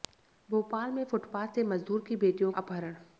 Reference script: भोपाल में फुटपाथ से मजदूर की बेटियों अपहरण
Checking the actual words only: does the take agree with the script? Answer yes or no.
yes